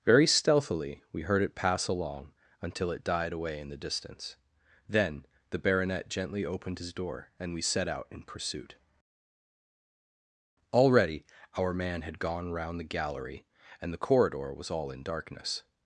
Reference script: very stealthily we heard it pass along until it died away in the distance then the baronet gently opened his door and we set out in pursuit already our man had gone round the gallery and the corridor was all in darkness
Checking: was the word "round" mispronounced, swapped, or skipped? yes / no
no